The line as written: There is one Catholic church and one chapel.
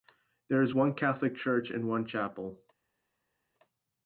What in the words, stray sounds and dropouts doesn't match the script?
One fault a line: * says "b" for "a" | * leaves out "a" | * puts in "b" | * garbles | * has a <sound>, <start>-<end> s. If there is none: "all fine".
all fine